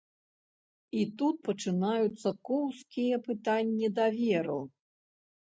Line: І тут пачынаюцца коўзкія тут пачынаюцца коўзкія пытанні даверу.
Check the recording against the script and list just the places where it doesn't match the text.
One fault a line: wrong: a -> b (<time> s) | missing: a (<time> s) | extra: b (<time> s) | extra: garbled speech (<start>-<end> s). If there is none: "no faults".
missing: тут пачынаюцца коўзкія (3.2 s)